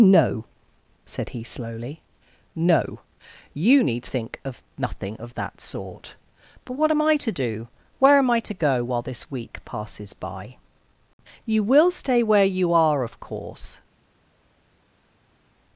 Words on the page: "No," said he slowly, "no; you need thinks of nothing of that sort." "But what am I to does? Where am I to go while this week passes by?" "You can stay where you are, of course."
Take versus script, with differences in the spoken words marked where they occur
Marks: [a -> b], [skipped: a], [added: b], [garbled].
"No," said he slowly, "no; you need [thinks -> think] of nothing of that sort." "But what am I to [does? -> do] Where am I to go while this week passes by?" "You [can -> will] stay where you are, of course."